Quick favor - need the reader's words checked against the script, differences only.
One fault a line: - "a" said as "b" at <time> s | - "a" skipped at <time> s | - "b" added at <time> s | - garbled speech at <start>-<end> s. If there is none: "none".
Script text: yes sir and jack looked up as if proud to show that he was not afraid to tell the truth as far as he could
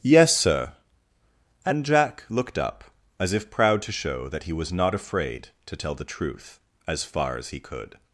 none